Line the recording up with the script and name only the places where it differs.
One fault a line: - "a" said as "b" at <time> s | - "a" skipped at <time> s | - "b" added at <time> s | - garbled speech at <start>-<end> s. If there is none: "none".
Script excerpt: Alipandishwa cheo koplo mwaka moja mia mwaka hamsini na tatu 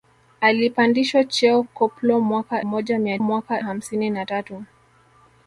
none